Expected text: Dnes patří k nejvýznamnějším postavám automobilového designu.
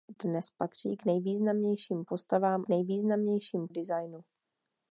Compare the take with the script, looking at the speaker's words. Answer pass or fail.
fail